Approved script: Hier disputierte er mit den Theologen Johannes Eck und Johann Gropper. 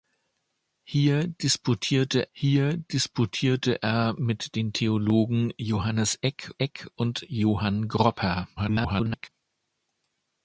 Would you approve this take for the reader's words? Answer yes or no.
no